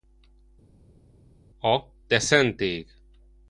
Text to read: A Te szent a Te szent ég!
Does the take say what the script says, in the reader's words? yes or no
no